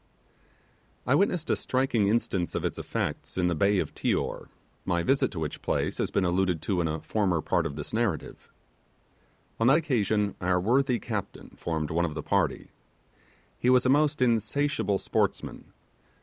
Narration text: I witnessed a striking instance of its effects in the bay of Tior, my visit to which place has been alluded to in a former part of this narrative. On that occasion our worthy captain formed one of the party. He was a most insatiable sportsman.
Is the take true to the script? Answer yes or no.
yes